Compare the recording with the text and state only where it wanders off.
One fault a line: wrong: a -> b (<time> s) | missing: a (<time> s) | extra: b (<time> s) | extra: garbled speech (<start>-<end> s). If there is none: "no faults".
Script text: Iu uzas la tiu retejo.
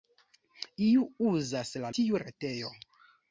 no faults